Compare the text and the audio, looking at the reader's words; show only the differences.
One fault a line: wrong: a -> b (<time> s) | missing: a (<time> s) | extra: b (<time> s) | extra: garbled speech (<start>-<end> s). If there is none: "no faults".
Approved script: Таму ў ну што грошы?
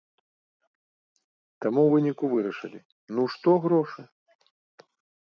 extra: выніку вырашылі (1.9 s)